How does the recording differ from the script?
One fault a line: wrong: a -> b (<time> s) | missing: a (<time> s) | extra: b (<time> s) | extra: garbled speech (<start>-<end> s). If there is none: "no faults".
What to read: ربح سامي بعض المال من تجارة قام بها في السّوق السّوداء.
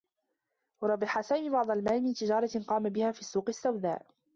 no faults